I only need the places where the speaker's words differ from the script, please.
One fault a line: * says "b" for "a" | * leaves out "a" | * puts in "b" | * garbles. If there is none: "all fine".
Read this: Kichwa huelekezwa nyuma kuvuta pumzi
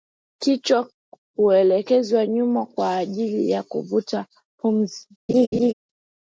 * puts in "kwa ajili ya"